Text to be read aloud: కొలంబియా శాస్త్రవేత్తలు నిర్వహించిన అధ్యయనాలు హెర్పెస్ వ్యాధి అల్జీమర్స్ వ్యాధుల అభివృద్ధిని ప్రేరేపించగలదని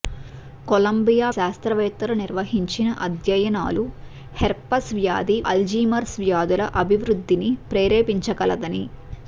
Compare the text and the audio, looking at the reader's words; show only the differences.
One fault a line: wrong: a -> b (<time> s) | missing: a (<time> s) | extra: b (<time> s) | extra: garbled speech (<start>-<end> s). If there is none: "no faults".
no faults